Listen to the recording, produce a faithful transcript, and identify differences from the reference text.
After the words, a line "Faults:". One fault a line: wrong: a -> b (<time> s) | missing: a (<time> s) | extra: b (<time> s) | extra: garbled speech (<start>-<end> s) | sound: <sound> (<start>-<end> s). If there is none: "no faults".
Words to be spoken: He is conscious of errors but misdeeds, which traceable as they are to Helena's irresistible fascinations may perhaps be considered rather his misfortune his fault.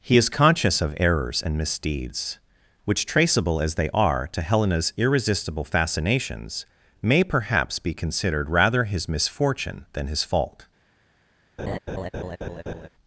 He is conscious of errors and misdeeds, which traceable as they are to Helena's irresistible fascinations may perhaps be considered rather his misfortune than his fault.
Faults:
wrong: but -> and (1.4 s)
extra: than (9.9 s)
sound: laugh (11.6-12.9 s)